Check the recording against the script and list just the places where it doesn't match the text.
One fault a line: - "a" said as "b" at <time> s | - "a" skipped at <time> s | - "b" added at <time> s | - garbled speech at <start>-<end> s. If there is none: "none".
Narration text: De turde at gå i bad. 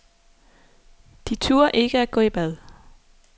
- "ikke" added at 1.7 s